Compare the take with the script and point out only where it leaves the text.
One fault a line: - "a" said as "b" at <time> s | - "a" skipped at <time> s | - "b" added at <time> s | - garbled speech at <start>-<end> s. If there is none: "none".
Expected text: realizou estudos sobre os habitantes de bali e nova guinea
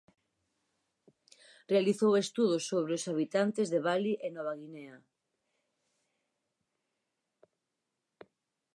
none